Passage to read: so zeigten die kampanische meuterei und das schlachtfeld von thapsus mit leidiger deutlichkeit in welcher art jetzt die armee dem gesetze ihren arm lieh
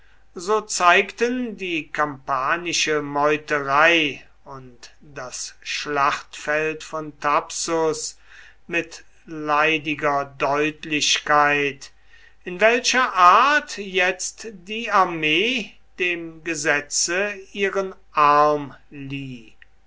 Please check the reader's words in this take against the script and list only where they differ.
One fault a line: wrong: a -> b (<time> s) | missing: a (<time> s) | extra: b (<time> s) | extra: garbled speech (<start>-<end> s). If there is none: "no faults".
no faults